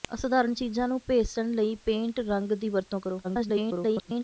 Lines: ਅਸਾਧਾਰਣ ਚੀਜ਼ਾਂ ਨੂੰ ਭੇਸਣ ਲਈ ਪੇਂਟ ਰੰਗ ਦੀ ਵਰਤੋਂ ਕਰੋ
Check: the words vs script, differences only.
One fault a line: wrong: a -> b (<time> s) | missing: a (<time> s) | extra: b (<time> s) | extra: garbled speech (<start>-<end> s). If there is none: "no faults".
extra: garbled speech (3.2-4.2 s)